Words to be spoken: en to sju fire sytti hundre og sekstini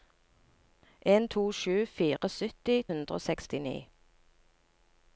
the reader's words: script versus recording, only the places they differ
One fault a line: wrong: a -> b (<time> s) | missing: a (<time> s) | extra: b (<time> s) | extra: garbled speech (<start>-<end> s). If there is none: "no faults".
no faults